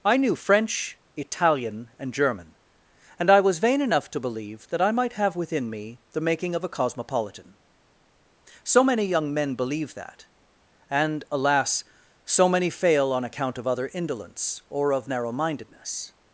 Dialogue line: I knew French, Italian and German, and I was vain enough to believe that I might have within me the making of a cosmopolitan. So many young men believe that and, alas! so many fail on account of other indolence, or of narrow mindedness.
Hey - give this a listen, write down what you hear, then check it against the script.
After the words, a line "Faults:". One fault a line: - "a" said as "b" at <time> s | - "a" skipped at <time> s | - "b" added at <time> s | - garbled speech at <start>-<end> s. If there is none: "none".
I knew French, Italian and German, and I was vain enough to believe that I might have within me the making of a cosmopolitan. So many young men believe that and, alas! so many fail on account of other indolence, or of narrow mindedness.
Faults:
none